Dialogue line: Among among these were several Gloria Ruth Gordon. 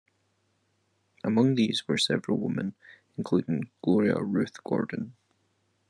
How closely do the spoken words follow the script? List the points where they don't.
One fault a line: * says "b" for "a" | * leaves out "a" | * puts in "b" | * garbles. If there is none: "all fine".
* leaves out "among"
* puts in "women including"